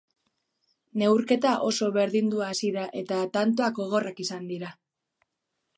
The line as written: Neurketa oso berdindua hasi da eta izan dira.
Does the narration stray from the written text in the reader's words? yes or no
yes